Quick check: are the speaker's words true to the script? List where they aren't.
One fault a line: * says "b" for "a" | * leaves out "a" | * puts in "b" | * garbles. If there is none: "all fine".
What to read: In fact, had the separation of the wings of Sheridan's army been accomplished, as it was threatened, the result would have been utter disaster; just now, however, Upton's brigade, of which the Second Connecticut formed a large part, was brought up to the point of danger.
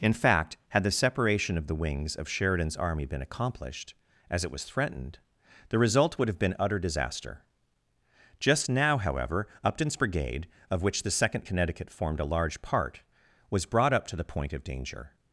all fine